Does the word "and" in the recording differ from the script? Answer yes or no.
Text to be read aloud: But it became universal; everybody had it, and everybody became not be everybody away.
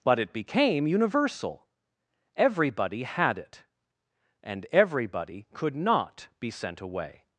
no